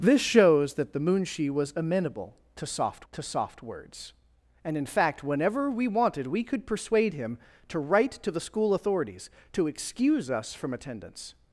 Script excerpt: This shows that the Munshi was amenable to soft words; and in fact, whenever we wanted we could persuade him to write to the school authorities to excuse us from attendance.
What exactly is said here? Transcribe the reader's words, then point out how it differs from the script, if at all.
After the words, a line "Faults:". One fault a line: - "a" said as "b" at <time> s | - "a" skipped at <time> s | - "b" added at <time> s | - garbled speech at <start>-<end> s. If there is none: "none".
This shows that the Munshi was amenable to soft to soft words; and in fact, whenever we wanted we could persuade him to write to the school authorities to excuse us from attendance.
Faults:
- "to soft" added at 3.1 s